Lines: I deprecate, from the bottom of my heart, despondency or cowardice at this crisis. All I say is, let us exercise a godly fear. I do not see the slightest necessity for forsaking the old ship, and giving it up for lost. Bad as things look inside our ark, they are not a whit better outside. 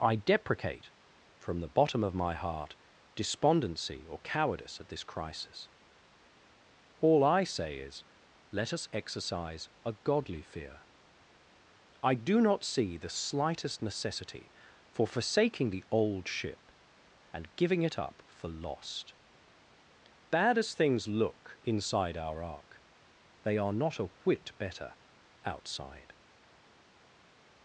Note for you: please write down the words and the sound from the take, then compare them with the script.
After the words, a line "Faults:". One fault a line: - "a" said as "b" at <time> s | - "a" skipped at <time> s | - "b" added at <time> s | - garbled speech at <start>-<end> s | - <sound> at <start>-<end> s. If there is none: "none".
I deprecate, from the bottom of my heart, despondency or cowardice at this crisis. All I say is, let us exercise a godly fear. I do not see the slightest necessity for forsaking the old ship, and giving it up for lost. Bad as things look inside our ark, they are not a whit better outside.
Faults:
none